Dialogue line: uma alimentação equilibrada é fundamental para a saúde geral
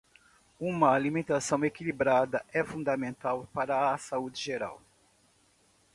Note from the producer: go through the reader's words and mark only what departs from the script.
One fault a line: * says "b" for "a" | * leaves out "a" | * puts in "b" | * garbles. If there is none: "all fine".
all fine